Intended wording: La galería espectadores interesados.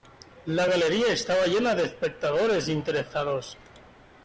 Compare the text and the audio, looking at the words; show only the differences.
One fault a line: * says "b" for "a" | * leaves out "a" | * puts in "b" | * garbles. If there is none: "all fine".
* puts in "estaba llena de"